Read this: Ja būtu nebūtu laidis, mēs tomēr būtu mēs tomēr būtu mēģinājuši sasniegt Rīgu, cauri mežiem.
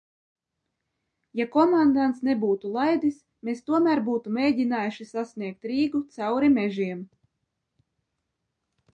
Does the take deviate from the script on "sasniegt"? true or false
false